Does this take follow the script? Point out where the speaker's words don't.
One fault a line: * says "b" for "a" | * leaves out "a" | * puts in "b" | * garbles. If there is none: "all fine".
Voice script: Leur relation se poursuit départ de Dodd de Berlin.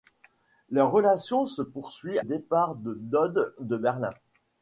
all fine